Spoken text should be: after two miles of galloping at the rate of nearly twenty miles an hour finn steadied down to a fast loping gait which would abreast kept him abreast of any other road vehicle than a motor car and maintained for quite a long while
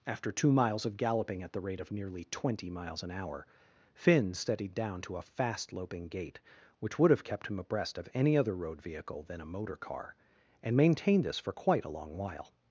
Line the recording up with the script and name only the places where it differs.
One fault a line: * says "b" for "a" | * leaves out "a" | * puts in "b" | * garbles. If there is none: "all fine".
* says "have" for "abreast"
* puts in "this"